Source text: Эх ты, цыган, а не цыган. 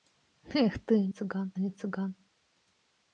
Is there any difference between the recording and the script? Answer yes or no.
no